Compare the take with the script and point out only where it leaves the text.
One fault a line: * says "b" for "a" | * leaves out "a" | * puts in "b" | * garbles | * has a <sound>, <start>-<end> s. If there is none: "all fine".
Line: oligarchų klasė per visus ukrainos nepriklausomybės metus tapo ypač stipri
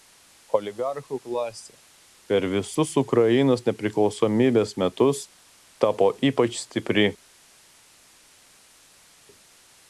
all fine